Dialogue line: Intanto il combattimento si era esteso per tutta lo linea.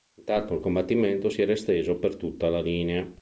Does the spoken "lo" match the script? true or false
false